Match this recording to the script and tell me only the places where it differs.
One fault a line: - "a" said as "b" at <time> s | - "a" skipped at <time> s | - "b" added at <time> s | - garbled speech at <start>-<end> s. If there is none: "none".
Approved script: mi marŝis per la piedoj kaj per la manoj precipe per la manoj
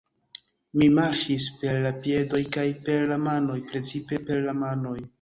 none